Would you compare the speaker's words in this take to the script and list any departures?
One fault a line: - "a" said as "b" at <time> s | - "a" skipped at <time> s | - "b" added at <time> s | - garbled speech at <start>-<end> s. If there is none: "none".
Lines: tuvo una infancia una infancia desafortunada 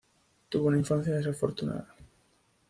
- "una infancia" skipped at 1.1 s